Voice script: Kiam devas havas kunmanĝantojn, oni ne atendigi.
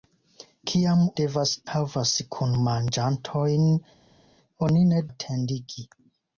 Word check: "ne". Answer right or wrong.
right